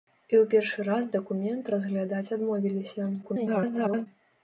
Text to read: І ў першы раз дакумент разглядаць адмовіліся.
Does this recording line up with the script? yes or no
no